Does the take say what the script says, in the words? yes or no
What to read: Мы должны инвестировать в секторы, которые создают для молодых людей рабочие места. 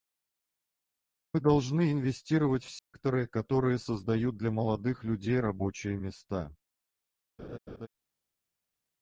yes